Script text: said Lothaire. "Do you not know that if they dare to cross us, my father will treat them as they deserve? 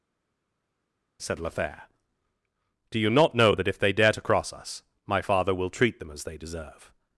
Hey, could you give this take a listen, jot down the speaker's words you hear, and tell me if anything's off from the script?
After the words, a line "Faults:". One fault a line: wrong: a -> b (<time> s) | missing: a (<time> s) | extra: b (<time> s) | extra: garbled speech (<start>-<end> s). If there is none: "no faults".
said Lothaire. "Do you not know that if they dare to cross us, my father will treat them as they deserve?
Faults:
no faults